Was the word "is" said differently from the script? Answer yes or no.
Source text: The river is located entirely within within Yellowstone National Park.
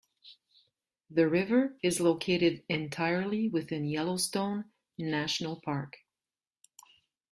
no